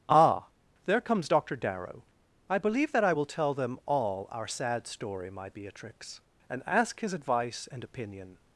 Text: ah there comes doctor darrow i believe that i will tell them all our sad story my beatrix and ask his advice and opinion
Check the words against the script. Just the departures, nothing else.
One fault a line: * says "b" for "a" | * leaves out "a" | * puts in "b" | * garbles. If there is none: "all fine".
all fine